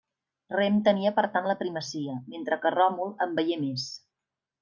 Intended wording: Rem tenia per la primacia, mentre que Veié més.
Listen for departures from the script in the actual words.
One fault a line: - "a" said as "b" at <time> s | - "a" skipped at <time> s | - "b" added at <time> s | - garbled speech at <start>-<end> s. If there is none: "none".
- "tant" added at 1.4 s
- "Ròmul en" added at 2.8 s